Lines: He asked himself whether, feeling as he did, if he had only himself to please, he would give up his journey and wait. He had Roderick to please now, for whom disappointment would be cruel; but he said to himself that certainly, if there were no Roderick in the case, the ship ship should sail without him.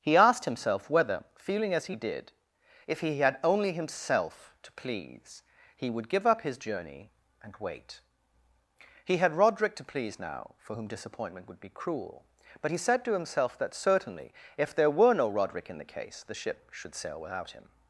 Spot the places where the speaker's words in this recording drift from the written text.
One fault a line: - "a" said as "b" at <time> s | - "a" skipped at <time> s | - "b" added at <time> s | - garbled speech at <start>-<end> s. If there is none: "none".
- "ship" skipped at 16.7 s